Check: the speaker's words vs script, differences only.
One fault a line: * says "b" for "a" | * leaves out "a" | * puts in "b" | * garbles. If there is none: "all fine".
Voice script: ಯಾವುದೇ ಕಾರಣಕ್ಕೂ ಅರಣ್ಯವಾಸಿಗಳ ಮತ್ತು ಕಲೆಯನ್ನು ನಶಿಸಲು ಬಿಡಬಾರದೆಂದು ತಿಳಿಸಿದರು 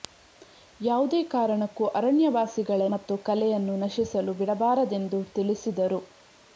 all fine